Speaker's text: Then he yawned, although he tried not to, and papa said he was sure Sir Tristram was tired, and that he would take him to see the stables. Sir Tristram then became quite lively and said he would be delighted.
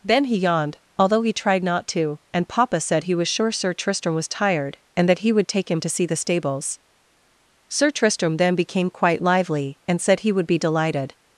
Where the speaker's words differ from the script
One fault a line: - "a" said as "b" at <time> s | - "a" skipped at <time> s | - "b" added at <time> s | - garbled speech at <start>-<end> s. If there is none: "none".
none